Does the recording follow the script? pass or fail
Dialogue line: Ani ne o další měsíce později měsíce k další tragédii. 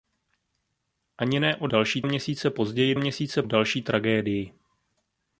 pass